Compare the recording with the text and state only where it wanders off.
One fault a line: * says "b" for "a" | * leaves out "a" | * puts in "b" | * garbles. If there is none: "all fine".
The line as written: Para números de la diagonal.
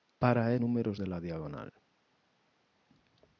all fine